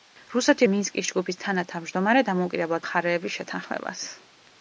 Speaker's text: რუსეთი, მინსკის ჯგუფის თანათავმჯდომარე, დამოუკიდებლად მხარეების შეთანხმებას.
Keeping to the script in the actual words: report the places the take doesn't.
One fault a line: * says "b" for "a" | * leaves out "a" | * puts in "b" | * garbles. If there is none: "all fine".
all fine